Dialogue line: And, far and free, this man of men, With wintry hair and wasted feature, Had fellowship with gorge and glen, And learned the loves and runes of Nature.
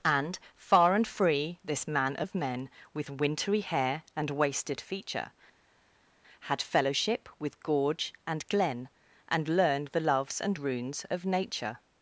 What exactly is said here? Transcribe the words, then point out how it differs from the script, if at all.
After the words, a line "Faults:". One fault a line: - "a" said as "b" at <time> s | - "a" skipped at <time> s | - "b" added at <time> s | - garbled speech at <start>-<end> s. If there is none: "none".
And, far and free, this man of men, With wintry hair and wasted feature, Had fellowship with gorge and glen, And learned the loves and runes of Nature.
Faults:
none